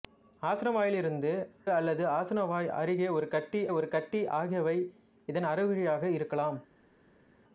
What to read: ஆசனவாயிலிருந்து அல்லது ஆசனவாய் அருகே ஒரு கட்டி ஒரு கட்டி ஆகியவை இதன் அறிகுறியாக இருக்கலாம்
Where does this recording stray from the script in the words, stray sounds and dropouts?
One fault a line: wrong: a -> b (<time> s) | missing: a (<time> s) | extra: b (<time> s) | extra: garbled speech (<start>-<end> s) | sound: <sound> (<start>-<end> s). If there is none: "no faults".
no faults